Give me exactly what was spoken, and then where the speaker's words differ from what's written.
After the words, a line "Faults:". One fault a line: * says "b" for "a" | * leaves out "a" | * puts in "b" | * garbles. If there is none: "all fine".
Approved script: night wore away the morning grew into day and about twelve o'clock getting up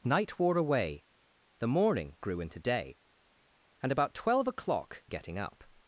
night wore away the morning grew into day and about twelve o'clock getting up
Faults:
all fine